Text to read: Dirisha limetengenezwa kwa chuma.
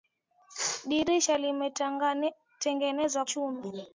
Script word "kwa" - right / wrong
wrong